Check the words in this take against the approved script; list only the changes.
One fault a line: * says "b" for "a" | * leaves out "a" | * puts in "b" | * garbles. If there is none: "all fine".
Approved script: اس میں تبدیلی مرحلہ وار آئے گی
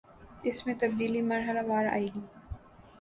all fine